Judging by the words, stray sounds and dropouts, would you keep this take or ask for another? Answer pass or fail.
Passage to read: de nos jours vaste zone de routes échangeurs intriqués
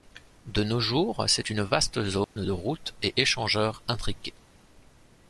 fail